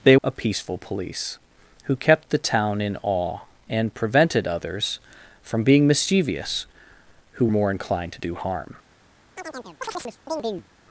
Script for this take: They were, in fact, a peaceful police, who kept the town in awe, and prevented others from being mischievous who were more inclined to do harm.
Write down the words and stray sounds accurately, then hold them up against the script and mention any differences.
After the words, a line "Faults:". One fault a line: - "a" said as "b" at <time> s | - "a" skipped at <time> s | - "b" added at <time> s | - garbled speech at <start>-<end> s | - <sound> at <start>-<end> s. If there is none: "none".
They a peaceful police, who kept the town in awe, and prevented others from being mischievous who more inclined to do harm.
Faults:
- "were in fact" skipped at 0.2 s
- "were" skipped at 7.5 s
- chirp at 9.4-10.7 s